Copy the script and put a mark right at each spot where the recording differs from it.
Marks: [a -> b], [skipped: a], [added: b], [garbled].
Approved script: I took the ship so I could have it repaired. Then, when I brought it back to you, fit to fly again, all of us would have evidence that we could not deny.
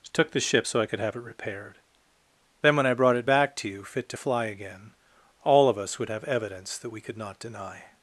[skipped: I] took the ship so I could have it repaired. Then, when I brought it back to you, fit to fly again, all of us would have evidence that we could not deny.